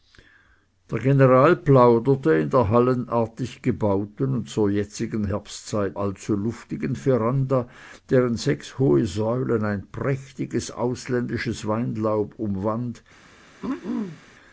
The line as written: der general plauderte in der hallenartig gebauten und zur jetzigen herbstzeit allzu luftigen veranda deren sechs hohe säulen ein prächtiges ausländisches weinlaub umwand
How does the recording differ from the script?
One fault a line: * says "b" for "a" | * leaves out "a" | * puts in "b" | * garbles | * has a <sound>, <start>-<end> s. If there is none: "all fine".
* has a throat clearing, 13.6-14.2 s